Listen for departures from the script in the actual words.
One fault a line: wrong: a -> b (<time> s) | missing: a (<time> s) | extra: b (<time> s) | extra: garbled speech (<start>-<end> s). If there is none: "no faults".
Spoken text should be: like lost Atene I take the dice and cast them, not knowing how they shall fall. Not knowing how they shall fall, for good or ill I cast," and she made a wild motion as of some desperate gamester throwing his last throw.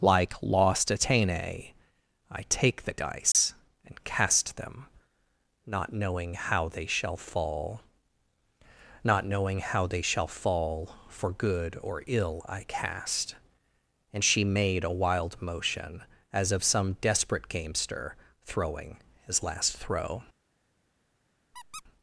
no faults